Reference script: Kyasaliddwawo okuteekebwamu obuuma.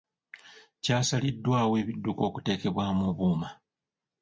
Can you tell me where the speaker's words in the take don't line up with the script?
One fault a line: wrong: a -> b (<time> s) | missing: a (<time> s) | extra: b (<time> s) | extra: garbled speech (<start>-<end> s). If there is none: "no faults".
extra: ebidduka (1.8 s)